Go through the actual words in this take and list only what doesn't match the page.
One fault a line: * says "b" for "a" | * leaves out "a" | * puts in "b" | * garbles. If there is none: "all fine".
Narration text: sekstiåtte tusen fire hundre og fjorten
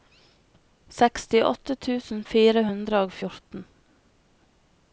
all fine